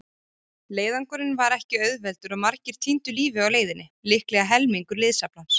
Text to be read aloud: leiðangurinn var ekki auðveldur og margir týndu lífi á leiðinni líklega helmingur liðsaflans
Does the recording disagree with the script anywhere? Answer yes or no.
no